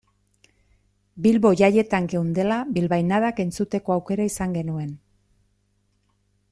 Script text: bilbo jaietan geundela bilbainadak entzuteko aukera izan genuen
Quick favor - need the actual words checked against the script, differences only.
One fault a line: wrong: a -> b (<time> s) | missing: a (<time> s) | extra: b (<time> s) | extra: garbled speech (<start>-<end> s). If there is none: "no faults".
no faults